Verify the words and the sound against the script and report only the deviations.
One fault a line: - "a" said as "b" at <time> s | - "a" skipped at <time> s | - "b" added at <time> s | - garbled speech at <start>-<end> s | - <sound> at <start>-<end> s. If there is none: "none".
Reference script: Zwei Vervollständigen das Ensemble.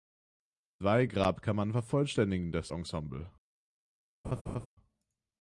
- "Grabkammern" added at 1.0 s
- laugh at 4.2-4.7 s